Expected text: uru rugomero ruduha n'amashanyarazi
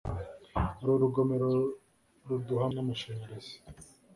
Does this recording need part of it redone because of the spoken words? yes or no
no